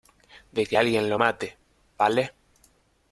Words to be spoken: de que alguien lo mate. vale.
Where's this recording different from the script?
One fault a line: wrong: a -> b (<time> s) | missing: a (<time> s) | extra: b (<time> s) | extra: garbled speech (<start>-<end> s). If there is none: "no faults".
no faults